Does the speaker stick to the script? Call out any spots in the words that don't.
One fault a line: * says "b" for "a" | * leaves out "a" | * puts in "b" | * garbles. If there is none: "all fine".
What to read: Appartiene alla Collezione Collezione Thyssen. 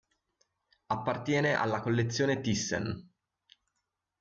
* leaves out "Collezione"